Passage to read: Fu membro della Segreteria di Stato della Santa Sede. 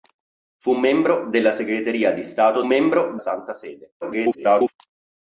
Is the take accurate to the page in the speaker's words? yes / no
no